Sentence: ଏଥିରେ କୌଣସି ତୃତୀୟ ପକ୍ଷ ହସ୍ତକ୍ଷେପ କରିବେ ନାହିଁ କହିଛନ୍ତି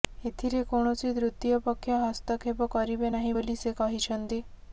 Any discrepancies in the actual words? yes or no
yes